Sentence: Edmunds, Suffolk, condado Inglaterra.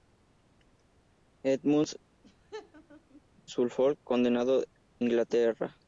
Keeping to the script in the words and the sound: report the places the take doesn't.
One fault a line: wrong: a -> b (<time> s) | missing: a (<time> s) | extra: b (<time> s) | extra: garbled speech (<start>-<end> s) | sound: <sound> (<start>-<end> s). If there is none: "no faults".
sound: laugh (2.2-3.2 s)